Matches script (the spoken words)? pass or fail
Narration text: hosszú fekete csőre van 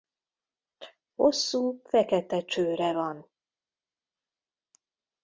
pass